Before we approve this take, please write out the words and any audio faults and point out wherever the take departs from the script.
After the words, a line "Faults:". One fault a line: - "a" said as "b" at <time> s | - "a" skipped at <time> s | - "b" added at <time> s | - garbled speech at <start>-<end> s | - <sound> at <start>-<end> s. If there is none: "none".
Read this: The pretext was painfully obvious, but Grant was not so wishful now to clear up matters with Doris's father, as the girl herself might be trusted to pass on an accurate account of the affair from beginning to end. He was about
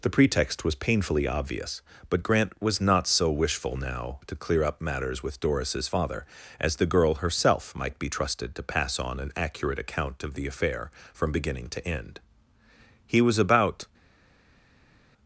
The pretext was painfully obvious, but Grant was not so wishful now to clear up matters with Doris's father, as the girl herself might be trusted to pass on an accurate account of the affair from beginning to end. He was about
Faults:
none